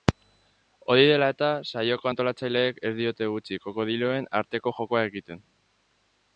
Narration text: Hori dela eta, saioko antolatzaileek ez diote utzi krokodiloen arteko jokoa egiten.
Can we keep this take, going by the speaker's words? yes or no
yes